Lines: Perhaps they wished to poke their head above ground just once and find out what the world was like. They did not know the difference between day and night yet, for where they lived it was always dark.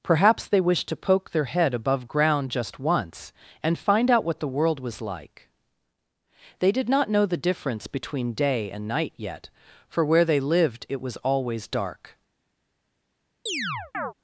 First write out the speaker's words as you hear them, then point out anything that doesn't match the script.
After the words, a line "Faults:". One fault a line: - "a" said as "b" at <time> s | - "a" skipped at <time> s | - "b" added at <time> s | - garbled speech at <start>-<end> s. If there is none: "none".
Perhaps they wished to poke their head above ground just once and find out what the world was like. They did not know the difference between day and night yet, for where they lived it was always dark.
Faults:
none